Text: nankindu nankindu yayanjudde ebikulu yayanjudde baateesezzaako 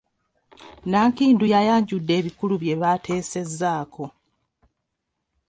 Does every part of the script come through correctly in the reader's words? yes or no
no